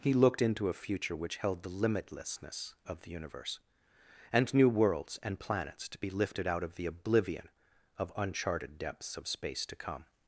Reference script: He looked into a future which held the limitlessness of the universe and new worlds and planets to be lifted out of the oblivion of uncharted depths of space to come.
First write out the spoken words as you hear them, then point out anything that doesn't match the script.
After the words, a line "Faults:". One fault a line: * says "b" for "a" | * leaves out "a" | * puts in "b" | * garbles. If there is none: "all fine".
He looked into a future which held the limitlessness of the universe and new worlds and planets to be lifted out of the oblivion of uncharted depths of space to come.
Faults:
all fine